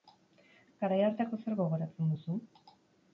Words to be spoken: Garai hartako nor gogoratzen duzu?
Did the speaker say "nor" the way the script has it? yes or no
no